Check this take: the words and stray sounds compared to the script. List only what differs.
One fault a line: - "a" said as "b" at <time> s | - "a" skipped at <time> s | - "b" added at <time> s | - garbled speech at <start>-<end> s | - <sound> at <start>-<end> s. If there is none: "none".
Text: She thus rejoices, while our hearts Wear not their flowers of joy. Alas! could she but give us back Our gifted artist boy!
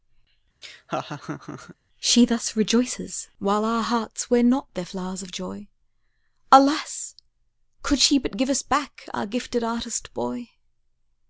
- laugh at 0.6-1.8 s